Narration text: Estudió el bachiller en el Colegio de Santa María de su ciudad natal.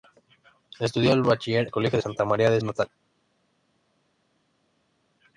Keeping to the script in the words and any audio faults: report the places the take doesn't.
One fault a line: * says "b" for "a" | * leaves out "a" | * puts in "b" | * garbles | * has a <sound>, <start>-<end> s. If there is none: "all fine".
* leaves out "en"
* leaves out "su ciudad"